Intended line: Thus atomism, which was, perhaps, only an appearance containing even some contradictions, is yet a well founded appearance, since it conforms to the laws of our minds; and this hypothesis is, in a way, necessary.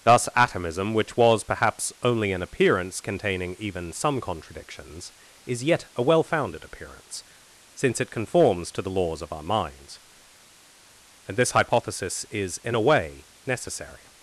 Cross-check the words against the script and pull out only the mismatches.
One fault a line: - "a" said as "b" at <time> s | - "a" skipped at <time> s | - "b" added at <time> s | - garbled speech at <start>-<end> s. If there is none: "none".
none